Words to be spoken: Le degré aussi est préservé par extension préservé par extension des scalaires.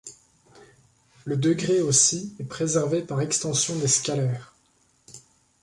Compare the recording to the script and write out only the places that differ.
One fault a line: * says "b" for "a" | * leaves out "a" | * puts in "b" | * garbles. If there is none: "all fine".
* leaves out "préservé par extension"